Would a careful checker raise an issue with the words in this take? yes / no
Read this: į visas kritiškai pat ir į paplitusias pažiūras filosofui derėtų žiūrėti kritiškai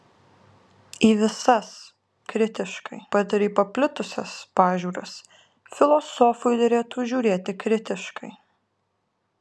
no